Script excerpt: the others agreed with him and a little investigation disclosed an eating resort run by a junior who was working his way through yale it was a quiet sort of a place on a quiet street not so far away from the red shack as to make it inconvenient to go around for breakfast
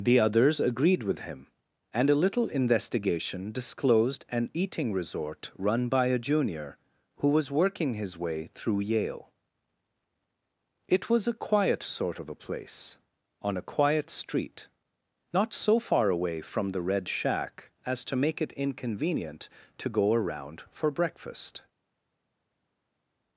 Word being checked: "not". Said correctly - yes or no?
yes